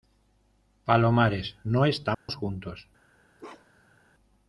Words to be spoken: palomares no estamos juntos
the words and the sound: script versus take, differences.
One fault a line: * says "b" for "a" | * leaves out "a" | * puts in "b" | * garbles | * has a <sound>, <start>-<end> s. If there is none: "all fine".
* has a dropout, 2.1-2.3 s
* has a bark, 3.4-4.0 s